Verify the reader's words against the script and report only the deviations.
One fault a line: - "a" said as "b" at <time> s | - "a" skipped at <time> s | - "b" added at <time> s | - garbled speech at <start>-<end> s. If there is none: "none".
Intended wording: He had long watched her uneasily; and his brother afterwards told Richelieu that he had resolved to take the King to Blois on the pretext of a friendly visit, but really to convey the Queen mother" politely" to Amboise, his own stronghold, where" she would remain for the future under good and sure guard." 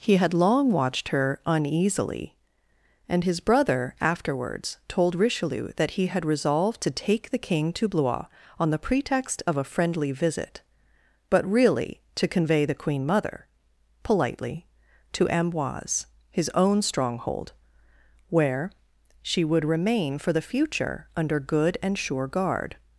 none